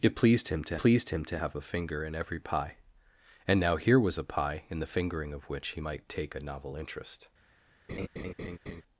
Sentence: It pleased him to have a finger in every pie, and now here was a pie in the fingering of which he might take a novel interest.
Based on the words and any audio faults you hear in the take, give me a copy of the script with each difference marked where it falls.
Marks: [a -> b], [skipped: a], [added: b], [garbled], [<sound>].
It pleased him to [added: pleased him to] have a finger in every pie, and now here was a pie in the fingering of which he might take a novel interest. [laugh]